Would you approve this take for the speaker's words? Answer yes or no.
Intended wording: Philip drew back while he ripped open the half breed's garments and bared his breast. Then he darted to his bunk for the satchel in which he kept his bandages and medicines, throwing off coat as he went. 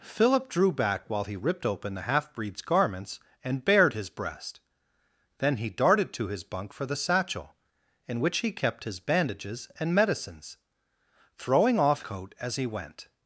yes